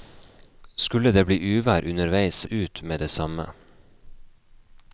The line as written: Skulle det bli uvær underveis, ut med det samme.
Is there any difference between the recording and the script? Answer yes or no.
no